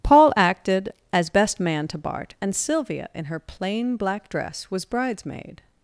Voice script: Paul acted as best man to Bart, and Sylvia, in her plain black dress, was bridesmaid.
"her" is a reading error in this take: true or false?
false